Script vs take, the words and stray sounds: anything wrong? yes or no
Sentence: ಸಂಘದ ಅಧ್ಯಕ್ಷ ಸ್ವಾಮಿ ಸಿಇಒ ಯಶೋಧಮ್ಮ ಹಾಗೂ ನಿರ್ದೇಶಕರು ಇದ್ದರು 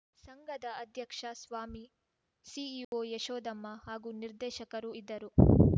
yes